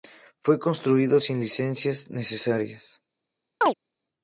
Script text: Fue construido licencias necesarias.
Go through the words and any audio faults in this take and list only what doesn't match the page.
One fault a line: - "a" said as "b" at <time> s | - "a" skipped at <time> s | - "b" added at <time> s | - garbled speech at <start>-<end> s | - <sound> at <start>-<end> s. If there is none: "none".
- "sin" added at 1.2 s
- chirp at 3.6-3.7 s